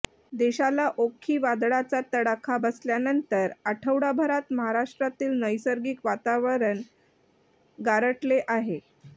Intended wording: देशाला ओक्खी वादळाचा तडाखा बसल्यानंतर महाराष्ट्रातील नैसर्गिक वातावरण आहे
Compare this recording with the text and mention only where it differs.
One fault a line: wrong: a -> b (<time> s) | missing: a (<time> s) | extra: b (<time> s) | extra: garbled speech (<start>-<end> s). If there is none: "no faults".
extra: आठवडाभरात (3.7 s)
extra: गारठले (7.8 s)